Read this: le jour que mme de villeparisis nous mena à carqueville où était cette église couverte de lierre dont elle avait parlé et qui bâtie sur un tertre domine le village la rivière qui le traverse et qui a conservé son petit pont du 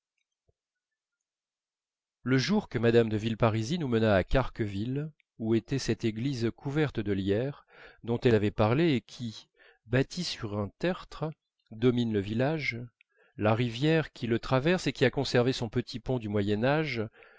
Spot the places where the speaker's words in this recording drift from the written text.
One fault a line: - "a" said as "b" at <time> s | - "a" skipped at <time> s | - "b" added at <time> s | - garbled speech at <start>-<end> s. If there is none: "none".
none